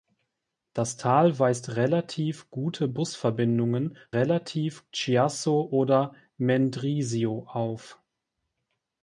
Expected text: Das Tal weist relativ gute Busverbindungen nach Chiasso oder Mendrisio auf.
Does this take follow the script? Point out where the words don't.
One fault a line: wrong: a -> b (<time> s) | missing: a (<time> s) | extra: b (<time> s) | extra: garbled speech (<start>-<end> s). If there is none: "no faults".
wrong: nach -> relativ (4.1 s)